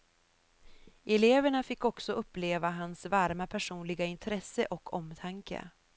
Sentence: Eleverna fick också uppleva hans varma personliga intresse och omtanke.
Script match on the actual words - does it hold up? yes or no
yes